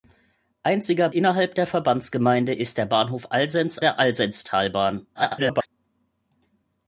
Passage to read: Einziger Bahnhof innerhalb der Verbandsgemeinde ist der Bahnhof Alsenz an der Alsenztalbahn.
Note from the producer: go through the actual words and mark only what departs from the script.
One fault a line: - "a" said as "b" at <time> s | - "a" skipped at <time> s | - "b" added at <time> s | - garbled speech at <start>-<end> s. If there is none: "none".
- "Bahnhof" skipped at 1.1 s
- "an" skipped at 3.8 s
- garbled speech at 5.1-5.7 s